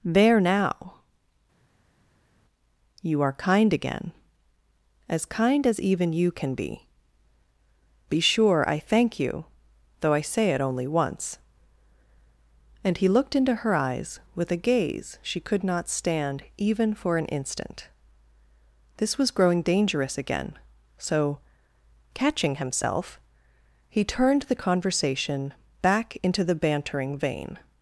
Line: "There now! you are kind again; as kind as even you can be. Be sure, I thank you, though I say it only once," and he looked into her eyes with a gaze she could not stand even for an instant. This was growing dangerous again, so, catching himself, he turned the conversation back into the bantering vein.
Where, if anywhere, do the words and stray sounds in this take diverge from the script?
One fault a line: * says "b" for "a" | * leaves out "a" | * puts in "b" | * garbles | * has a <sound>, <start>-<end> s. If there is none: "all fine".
all fine